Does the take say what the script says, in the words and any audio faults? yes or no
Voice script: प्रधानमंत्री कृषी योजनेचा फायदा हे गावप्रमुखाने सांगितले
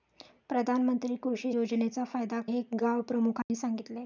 no